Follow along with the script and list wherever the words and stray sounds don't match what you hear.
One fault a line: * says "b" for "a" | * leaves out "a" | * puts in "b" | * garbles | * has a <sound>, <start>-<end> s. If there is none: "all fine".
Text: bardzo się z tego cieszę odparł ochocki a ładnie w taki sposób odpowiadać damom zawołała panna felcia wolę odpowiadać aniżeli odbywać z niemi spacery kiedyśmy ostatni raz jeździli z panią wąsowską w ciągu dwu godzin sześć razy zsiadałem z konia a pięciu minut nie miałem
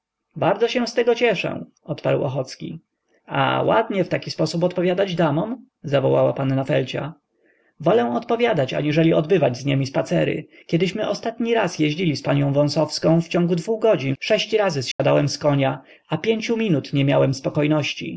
* has a dropout, 14.9-15.0 s